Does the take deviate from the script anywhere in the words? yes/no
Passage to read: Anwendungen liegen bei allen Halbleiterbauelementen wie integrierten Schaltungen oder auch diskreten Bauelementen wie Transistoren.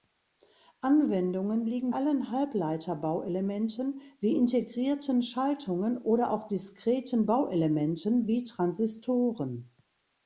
yes